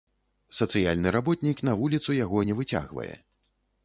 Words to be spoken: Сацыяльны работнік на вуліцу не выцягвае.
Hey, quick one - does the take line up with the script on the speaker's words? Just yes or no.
no